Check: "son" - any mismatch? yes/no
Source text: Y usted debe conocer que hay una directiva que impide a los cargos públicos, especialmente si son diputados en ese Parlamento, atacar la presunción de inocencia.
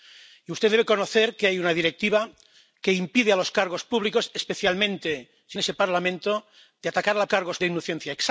yes